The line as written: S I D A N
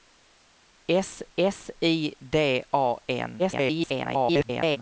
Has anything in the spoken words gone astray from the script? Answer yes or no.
yes